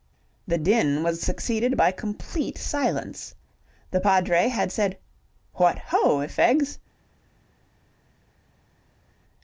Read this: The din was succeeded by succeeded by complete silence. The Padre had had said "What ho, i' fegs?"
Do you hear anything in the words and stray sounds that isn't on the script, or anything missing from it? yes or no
yes